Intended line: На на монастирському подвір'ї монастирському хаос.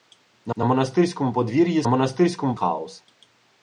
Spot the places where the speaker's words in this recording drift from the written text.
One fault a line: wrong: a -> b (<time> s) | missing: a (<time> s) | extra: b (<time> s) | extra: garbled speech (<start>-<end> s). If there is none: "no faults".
no faults